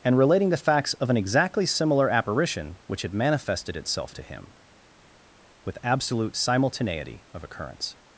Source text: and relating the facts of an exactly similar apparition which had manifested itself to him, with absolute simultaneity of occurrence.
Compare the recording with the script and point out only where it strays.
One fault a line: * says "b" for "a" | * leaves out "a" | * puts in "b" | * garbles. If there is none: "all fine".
all fine